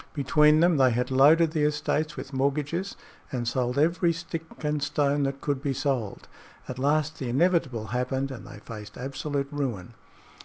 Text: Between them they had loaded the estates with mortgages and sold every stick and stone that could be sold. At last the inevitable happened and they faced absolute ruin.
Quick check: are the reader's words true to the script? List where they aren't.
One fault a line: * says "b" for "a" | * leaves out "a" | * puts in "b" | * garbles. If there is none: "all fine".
all fine